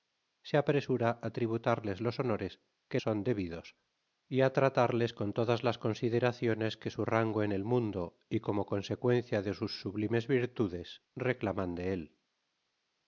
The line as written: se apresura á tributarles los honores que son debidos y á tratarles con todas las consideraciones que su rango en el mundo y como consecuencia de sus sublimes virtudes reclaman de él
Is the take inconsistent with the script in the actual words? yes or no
no